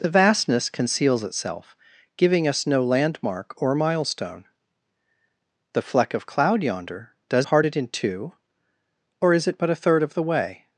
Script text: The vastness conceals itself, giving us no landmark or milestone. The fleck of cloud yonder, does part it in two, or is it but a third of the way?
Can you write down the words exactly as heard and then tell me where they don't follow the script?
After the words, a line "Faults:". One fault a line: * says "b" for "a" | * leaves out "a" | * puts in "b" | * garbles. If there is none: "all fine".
The vastness conceals itself, giving us no landmark or milestone. The fleck of cloud yonder, does part it in two, or is it but a third of the way?
Faults:
all fine